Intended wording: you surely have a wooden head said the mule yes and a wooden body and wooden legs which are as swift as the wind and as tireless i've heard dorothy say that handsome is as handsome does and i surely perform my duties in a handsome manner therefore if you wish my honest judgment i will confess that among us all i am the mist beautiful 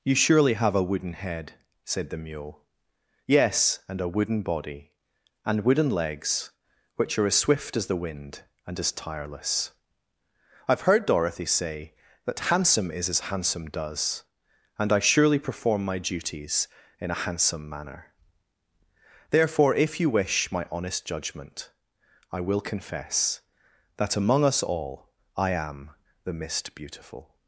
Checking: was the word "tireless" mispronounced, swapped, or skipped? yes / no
no